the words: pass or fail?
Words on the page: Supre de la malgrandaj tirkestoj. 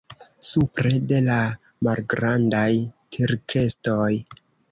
pass